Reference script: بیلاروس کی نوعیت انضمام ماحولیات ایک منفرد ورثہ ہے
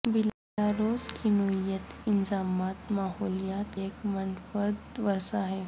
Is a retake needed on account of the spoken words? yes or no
no